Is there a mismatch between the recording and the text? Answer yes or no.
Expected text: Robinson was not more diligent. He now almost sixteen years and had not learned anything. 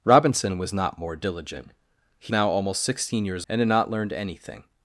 no